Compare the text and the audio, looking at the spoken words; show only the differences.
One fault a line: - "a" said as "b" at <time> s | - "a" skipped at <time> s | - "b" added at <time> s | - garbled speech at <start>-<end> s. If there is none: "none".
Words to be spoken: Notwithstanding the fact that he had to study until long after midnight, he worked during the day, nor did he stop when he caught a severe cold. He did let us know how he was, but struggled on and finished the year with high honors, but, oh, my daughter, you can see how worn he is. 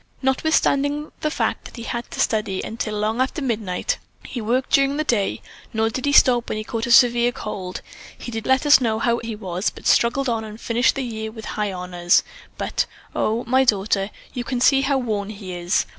none